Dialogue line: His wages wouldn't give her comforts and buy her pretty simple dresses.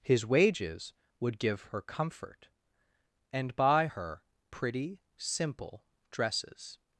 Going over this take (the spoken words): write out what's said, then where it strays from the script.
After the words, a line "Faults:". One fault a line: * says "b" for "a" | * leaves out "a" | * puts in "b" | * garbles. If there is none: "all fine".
His wages would give her comfort and buy her pretty simple dresses.
Faults:
* says "would" for "wouldn't"
* says "comfort" for "comforts"